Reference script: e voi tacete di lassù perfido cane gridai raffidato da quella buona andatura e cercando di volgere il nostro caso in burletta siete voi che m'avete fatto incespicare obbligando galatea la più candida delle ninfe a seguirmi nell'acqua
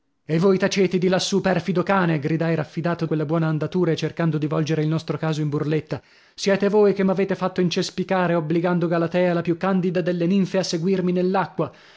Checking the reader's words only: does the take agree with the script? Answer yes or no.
no